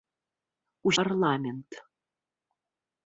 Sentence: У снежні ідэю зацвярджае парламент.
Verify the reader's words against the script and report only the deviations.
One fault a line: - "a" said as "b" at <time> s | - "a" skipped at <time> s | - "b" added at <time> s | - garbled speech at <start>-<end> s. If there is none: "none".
- "снежні ідэю зацвярджае" skipped at 0.9 s